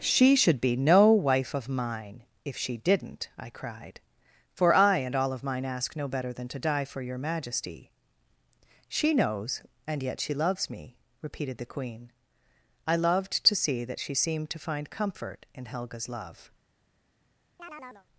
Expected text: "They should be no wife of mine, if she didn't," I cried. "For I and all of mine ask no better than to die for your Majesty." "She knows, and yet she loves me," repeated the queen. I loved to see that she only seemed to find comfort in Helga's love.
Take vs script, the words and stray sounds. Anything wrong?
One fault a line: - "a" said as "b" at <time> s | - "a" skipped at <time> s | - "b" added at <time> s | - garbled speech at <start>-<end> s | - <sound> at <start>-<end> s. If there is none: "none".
- "They" said as "She" at 0.0 s
- "only" skipped at 14.1 s
- chirp at 17.6-18.1 s